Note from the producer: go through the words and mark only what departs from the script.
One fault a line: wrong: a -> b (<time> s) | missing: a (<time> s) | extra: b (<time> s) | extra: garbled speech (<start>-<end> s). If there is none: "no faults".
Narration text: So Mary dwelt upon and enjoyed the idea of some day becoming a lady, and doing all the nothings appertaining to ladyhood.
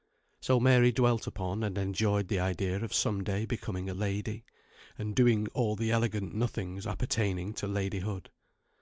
extra: elegant (5.9 s)